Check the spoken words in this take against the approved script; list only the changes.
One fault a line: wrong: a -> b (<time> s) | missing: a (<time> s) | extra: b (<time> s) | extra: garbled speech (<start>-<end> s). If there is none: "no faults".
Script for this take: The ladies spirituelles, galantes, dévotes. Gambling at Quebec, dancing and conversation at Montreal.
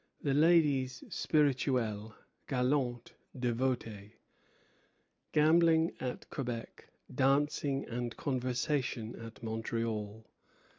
no faults